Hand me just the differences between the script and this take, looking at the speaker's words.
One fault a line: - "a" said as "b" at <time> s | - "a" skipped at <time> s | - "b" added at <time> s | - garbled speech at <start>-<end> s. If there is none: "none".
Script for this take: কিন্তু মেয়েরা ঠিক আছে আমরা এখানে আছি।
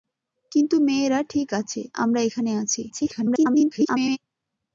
- garbled speech at 2.9-4.2 s